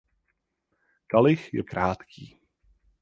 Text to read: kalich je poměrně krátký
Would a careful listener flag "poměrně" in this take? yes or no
yes